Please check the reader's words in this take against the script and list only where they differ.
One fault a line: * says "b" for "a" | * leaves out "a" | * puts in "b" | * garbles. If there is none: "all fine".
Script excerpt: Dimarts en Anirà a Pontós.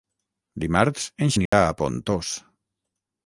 all fine